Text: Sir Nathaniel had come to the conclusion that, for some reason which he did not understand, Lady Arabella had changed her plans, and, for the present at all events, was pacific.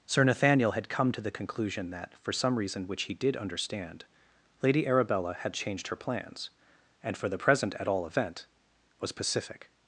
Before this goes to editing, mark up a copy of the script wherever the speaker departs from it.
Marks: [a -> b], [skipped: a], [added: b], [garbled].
Sir Nathaniel had come to the conclusion that, for some reason which he did [skipped: not] understand, Lady Arabella had changed her plans, and, for the present at all [events, -> event] was pacific.